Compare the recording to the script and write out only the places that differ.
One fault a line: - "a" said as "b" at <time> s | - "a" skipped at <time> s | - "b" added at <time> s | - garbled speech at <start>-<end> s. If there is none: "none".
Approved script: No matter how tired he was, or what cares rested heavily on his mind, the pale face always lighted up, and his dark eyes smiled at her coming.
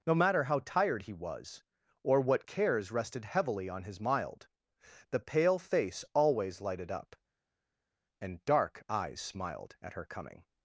- "mind" said as "mild" at 4.0 s
- "his" skipped at 8.4 s